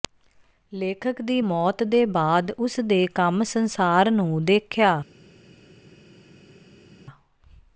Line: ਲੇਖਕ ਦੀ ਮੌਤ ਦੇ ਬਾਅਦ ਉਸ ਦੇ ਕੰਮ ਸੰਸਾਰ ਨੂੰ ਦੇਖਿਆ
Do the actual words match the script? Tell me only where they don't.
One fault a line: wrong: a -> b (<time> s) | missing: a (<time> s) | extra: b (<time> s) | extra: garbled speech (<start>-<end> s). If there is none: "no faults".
no faults